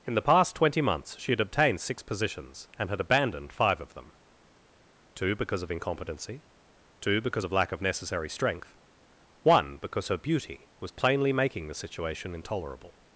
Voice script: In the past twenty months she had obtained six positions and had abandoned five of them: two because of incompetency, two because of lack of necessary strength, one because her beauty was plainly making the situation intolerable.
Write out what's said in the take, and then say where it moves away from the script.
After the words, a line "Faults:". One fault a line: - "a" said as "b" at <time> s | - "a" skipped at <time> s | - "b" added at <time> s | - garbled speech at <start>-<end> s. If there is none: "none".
In the past twenty months she had obtained six positions and had abandoned five of them: two because of incompetency, two because of lack of necessary strength, one because her beauty was plainly making the situation intolerable.
Faults:
none